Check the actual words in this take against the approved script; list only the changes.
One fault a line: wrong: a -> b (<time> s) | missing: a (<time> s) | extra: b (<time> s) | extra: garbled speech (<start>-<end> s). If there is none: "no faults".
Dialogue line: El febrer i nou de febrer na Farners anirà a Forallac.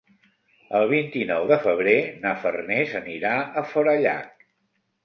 wrong: febrer -> vint (0.9 s)